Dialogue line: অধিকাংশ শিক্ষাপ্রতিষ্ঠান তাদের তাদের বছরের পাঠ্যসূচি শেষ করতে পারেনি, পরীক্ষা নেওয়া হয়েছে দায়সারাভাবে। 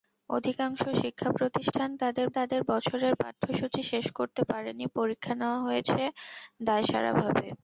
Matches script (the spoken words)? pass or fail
pass